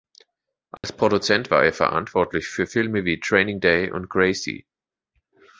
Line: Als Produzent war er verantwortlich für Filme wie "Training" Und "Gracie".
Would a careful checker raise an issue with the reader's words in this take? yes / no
yes